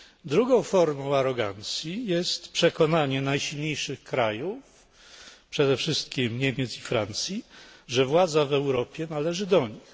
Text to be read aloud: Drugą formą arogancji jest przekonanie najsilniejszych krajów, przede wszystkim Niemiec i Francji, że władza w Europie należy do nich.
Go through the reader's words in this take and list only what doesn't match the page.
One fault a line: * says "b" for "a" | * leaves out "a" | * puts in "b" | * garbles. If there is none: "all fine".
all fine